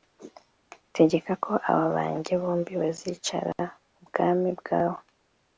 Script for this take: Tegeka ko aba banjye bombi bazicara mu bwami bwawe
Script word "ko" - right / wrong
right